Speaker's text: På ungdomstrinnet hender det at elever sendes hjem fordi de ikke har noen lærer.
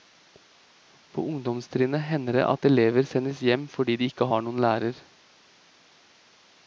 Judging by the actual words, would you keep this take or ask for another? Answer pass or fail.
pass